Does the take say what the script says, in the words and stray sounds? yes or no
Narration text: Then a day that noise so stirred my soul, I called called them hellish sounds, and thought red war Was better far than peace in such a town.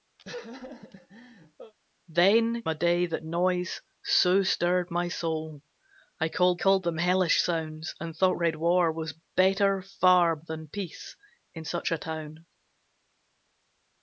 no